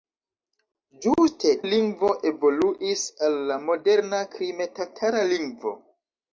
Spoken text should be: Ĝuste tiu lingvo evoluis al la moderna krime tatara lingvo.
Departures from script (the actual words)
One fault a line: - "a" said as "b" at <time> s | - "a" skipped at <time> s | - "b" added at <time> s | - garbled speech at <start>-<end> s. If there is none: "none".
- "tiu" skipped at 1.5 s